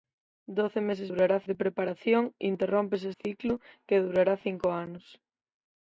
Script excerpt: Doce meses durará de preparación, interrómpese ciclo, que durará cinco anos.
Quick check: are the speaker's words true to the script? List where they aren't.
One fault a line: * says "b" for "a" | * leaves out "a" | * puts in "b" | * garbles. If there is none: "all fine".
all fine